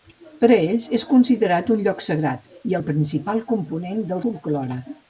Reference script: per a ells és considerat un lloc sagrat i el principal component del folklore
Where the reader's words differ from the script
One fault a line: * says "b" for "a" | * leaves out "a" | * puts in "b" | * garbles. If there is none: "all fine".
all fine